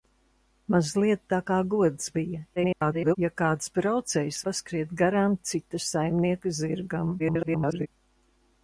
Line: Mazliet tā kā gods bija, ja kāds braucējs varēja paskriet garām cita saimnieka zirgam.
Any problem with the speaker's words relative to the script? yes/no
yes